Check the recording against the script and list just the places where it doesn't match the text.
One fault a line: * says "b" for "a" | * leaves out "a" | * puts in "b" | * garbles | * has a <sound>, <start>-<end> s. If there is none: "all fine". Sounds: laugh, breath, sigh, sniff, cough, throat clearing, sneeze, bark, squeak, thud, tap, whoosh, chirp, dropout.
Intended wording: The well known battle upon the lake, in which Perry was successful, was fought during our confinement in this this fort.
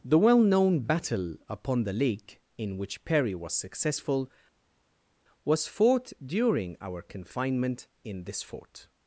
* leaves out "this"